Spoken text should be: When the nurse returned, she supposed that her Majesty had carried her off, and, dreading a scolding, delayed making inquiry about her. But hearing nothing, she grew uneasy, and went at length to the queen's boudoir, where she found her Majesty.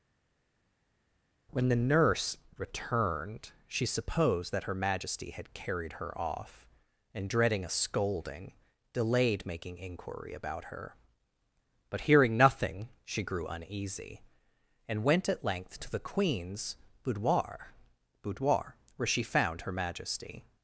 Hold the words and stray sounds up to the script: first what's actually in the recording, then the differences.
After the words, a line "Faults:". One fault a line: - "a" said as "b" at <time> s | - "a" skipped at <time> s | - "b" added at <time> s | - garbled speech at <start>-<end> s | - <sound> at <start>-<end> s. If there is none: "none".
When the nurse returned, she supposed that her Majesty had carried her off, and, dreading a scolding, delayed making inquiry about her. But hearing nothing, she grew uneasy, and went at length to the queen's boudoir boudoir, where she found her Majesty.
Faults:
- "boudoir" added at 18.2 s